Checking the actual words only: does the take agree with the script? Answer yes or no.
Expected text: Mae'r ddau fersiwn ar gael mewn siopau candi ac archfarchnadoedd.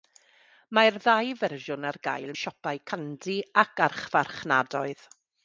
no